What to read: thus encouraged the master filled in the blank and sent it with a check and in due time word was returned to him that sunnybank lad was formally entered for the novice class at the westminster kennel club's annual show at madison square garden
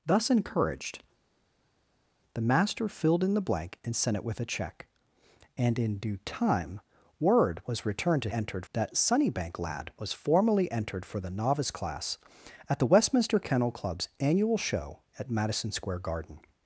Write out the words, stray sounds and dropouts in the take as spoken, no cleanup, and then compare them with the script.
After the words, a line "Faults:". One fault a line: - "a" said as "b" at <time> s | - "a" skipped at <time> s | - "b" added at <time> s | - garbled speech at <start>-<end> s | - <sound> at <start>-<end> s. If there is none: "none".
thus encouraged the master filled in the blank and sent it with a check and in due time word was returned to entered that sunnybank lad was formally entered for the novice class at the westminster kennel club's annual show at madison square garden
Faults:
- "him" said as "entered" at 8.3 s